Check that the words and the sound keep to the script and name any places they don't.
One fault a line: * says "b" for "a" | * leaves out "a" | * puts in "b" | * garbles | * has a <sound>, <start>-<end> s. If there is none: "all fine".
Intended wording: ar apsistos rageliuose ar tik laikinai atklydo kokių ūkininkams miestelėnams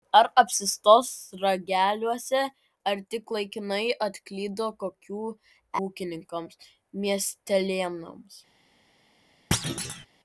* has a thud, 9.5-10.1 s